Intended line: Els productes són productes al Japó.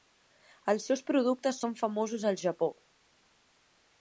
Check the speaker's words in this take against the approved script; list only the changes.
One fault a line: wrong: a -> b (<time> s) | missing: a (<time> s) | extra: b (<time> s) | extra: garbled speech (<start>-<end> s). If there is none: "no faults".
extra: seus (0.9 s)
wrong: productes -> famosos (1.8 s)